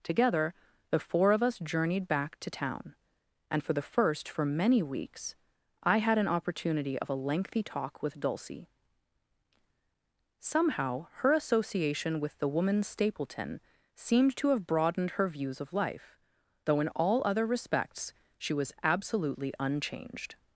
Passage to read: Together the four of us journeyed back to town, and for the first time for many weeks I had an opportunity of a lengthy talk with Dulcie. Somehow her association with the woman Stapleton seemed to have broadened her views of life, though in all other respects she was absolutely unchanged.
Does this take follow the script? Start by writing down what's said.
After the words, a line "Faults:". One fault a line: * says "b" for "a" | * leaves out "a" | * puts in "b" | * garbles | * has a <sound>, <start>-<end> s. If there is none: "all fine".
Together the four of us journeyed back to town, and for the first for many weeks I had an opportunity of a lengthy talk with Dulcie. Somehow her association with the woman Stapleton seemed to have broadened her views of life, though in all other respects she was absolutely unchanged.
Faults:
* leaves out "time"